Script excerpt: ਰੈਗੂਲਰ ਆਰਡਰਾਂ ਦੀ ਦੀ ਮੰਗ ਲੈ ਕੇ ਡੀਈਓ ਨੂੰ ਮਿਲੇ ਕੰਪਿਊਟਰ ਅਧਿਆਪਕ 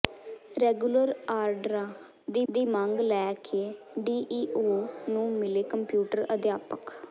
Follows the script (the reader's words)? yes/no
yes